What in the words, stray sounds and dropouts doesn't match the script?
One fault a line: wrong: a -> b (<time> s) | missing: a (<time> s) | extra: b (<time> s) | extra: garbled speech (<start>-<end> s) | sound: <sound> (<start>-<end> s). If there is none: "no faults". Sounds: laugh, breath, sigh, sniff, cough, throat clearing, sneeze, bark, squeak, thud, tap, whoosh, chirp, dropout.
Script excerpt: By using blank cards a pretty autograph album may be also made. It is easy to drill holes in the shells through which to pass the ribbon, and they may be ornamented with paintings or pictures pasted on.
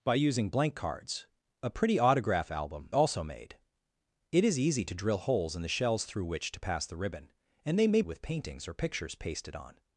missing: may be (2.9 s)
missing: be ornamented (8.0 s)